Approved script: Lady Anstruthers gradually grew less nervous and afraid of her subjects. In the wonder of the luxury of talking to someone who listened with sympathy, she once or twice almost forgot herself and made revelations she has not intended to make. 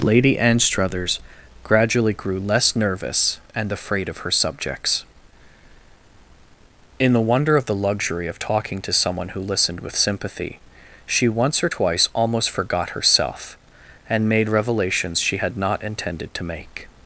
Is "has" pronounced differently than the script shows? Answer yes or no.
yes